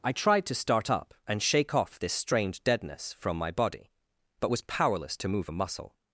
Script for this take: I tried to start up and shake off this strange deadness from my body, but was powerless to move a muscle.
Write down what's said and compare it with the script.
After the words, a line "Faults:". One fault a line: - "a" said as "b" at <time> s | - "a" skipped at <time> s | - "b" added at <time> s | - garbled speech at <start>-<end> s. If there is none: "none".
I tried to start up and shake off this strange deadness from my body, but was powerless to move a muscle.
Faults:
none